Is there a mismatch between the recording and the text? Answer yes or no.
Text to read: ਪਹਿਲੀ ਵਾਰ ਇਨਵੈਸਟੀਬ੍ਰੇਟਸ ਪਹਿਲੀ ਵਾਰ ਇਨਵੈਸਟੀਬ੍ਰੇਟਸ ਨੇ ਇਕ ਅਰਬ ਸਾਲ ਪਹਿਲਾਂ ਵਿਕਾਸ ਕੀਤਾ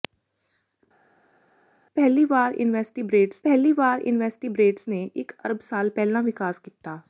no